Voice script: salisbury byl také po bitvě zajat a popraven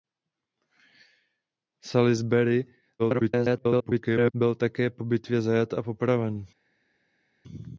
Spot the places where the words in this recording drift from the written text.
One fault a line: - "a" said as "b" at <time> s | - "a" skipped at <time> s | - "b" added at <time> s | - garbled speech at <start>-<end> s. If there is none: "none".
- garbled speech at 3.0-4.3 s